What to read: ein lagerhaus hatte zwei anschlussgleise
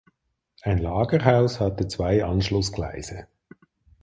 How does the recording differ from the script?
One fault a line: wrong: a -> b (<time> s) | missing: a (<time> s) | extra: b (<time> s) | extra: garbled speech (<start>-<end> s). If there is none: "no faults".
no faults